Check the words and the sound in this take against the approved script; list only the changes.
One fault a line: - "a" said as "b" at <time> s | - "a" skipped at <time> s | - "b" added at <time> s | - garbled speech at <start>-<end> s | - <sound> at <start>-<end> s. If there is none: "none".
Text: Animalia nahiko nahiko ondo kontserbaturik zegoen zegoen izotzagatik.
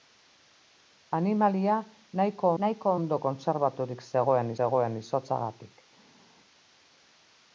none